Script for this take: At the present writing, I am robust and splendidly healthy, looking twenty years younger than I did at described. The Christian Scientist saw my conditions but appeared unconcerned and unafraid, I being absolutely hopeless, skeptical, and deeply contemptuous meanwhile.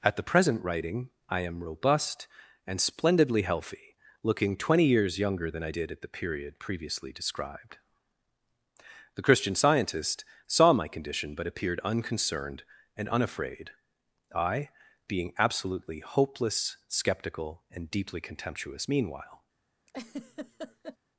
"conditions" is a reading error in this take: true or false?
true